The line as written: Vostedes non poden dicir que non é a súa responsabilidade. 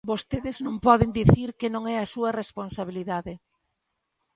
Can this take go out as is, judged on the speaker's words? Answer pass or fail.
pass